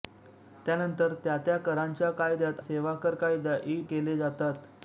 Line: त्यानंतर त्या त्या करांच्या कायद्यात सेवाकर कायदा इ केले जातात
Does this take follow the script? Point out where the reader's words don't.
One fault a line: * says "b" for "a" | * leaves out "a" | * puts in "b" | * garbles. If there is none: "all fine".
all fine